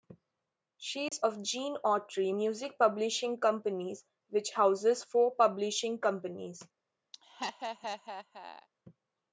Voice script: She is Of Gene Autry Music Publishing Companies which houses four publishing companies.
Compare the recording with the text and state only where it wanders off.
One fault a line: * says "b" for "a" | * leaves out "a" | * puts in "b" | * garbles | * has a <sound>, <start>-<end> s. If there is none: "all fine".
* has a dropout, 1.1-1.1 s
* has a laugh, 7.1-8.7 s